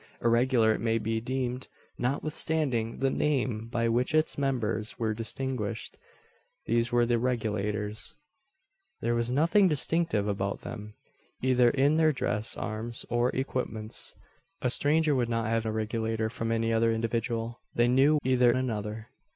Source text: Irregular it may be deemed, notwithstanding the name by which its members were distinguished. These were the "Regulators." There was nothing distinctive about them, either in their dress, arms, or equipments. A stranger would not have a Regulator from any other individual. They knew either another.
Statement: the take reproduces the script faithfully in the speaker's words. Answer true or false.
true